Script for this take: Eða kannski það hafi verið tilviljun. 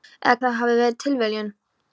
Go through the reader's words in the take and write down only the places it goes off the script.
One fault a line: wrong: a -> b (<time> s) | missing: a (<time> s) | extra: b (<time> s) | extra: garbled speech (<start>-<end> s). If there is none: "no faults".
missing: kannski (0.4 s)